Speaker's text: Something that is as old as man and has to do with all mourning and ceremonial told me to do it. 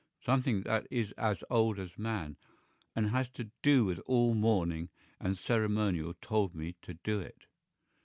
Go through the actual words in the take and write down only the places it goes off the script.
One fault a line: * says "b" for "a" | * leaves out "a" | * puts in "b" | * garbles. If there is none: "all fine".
all fine